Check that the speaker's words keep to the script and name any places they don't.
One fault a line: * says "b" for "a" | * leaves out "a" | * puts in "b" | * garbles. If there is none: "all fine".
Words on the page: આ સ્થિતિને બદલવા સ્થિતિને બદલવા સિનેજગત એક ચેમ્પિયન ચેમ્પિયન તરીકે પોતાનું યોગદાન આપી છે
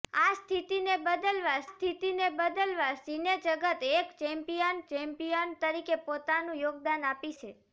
all fine